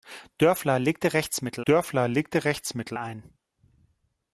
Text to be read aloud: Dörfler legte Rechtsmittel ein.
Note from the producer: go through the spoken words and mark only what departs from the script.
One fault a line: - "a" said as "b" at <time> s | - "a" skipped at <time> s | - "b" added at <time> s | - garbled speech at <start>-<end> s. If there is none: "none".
- "dörfler legte Rechtsmittel" added at 1.7 s